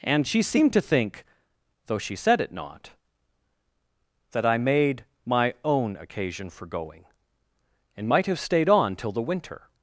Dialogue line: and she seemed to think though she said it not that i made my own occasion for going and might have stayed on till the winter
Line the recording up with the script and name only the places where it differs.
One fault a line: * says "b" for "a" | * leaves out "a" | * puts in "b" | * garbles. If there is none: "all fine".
all fine